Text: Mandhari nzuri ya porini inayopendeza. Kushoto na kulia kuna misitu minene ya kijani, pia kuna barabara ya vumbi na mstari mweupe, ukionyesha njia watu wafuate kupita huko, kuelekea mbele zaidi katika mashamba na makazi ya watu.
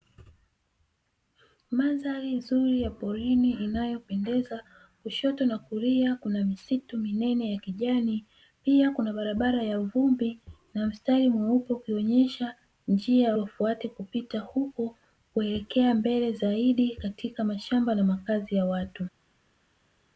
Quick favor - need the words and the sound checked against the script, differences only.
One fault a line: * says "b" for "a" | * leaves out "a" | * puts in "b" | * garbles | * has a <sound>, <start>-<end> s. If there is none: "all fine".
* leaves out "watu"